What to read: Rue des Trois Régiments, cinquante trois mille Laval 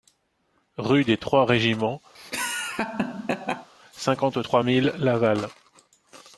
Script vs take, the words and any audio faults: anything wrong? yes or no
yes